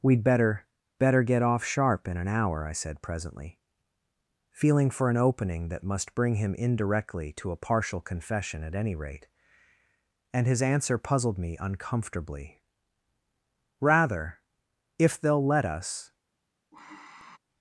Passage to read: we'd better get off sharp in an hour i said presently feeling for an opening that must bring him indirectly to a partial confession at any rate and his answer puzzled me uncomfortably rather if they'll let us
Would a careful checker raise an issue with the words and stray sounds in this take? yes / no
yes